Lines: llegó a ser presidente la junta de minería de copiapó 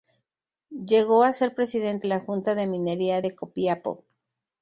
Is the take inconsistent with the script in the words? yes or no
no